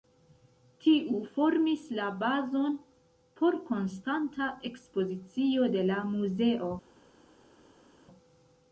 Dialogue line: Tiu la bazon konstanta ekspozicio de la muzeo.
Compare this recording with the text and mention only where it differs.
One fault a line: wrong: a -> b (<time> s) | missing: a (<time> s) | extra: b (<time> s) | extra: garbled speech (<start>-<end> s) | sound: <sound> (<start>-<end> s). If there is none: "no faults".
extra: formis (1.3 s)
extra: por (3.4 s)